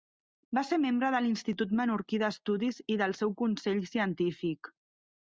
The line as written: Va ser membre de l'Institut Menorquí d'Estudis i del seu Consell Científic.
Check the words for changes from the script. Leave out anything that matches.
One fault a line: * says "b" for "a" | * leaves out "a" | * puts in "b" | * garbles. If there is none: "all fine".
all fine